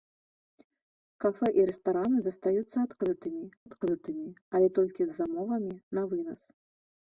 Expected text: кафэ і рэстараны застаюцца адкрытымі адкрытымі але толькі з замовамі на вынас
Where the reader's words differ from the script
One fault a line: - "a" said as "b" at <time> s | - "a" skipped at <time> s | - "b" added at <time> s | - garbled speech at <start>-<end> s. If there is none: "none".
none